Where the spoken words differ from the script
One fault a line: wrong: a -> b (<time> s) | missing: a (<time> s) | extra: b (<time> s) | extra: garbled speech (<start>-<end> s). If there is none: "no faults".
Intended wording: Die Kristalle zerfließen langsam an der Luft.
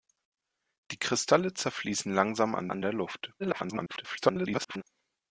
extra: an (2.7 s)
extra: garbled speech (3.4-4.8 s)